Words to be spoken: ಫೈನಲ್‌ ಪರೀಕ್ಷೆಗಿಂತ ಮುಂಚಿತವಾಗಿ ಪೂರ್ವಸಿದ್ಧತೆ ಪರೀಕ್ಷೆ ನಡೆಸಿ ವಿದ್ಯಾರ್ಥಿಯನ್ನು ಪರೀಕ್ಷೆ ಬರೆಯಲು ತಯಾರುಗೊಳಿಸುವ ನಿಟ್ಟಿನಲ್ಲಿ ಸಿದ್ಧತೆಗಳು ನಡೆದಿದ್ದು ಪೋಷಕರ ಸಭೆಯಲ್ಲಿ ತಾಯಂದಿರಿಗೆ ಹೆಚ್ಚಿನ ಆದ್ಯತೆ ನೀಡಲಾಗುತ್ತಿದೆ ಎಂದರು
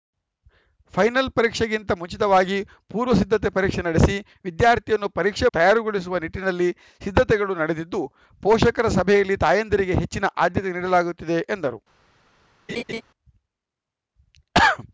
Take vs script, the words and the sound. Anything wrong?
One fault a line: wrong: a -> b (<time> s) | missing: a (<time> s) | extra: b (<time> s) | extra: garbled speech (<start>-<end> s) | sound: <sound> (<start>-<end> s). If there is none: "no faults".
missing: ಬರೆಯಲು (5.5 s)
sound: laugh (12.7-13.0 s)